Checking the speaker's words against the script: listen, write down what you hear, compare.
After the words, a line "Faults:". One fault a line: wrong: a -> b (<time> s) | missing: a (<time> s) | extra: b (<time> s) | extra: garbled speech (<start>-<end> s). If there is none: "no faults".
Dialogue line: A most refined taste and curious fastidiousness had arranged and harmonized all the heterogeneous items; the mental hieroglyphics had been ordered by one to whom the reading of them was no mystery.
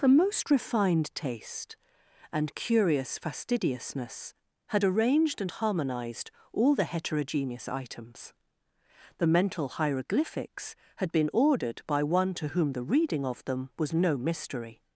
The most refined taste and curious fastidiousness had arranged and harmonized all the heterogeneous items; the mental hieroglyphics had been ordered by one to whom the reading of them was no mystery.
Faults:
wrong: A -> The (0.0 s)